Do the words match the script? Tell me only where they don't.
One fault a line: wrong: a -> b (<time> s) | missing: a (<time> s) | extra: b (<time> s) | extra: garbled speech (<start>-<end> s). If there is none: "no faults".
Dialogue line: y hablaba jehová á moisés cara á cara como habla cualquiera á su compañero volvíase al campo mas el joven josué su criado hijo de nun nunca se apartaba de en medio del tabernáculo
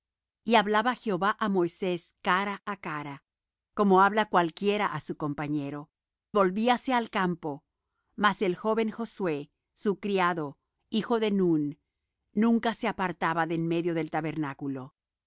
no faults